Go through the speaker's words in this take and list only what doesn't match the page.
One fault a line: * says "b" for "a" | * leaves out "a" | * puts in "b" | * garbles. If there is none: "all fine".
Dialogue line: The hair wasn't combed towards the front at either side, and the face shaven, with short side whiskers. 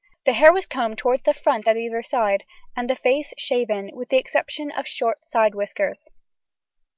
* says "was" for "wasn't"
* puts in "the exception of"